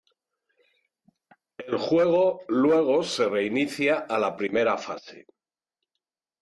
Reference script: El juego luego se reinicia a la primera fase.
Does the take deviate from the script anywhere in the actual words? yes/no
no